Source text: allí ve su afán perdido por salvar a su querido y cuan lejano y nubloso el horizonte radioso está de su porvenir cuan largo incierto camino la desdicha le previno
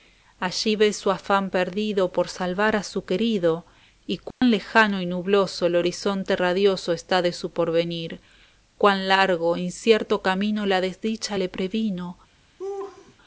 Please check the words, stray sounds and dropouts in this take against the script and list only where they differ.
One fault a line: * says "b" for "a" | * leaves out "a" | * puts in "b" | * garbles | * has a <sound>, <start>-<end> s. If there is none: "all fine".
* has a dropout, 4.3-4.4 s
* has a laugh, 12.6-13.2 s